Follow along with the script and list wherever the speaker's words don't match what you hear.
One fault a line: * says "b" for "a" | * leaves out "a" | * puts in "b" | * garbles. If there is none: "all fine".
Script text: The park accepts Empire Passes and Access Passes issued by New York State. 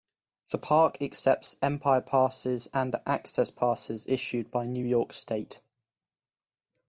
all fine